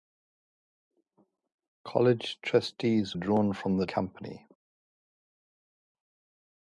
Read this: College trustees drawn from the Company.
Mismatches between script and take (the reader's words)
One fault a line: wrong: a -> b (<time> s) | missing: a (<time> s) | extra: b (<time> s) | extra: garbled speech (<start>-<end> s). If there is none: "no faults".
no faults